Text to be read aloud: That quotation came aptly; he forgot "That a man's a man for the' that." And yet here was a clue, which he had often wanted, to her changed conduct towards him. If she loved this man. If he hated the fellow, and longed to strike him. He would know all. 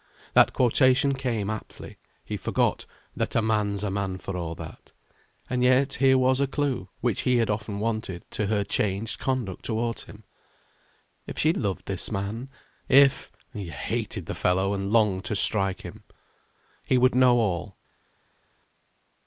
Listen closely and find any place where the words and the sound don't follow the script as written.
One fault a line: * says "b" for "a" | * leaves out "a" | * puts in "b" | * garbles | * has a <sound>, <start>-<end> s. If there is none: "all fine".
* says "a" for "the"